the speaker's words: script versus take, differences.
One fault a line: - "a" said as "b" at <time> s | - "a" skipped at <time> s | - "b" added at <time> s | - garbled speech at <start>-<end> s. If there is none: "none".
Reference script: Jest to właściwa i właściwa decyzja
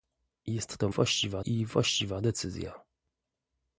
none